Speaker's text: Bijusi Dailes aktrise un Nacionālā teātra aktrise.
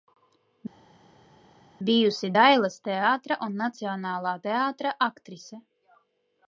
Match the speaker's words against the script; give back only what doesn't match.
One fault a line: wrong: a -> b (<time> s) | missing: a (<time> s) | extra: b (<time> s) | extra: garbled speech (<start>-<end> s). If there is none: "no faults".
wrong: aktrise -> teātra (2.9 s)